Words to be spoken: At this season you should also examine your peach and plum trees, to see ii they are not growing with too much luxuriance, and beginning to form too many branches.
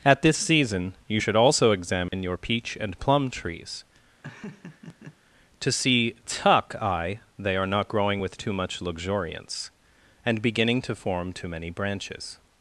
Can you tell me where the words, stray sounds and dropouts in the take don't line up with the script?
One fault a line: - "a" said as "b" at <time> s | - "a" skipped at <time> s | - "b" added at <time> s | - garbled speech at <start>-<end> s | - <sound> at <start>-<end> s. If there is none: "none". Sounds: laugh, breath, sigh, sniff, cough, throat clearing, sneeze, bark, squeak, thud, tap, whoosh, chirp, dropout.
- dropout at 2.1-2.1 s
- laugh at 4.2-5.2 s
- "ii" said as "tuck eye" at 6.3 s